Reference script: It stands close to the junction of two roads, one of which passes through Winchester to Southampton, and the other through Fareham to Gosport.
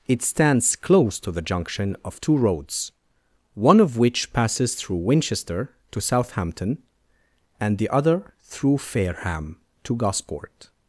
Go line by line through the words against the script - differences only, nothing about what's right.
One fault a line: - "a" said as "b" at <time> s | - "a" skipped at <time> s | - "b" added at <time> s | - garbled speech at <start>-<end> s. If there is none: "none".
none